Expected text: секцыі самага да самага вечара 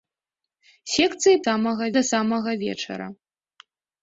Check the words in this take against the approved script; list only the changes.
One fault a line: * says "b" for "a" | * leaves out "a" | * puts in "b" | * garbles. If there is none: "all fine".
all fine